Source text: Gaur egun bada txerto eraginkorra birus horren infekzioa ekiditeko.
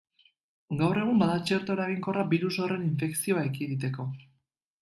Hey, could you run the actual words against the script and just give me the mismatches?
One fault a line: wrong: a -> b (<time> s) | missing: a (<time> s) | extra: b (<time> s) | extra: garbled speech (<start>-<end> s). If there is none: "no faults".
no faults